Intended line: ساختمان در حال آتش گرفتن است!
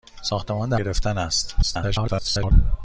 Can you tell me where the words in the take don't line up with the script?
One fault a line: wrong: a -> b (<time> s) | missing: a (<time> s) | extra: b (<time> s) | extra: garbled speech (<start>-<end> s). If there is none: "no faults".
missing: حال آتش (0.8 s)
extra: garbled speech (1.6-2.5 s)